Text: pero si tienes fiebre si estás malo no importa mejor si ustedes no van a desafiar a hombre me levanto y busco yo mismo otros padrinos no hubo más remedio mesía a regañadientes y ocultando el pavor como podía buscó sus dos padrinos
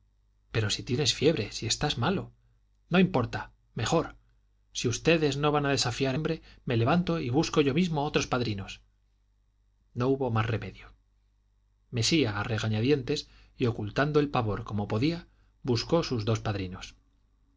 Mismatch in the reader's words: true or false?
false